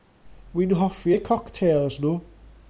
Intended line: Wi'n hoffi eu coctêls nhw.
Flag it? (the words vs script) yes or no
no